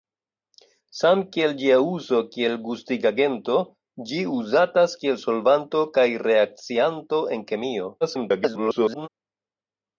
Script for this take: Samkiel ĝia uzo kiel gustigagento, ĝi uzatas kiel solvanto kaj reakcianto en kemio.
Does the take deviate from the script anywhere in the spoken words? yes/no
yes